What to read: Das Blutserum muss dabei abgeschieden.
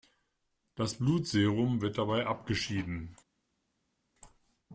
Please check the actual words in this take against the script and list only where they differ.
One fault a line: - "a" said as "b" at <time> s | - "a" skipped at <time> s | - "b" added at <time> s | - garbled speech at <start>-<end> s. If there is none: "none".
- "muss" said as "wird" at 1.8 s